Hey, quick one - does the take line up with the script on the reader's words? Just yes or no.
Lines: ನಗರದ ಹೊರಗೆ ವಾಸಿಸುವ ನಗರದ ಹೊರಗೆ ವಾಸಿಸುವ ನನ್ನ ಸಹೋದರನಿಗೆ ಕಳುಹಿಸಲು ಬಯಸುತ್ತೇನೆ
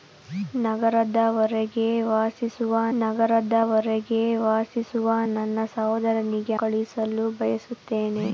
yes